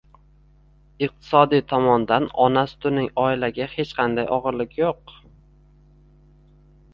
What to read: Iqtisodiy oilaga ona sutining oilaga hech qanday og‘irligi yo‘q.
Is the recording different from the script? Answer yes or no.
yes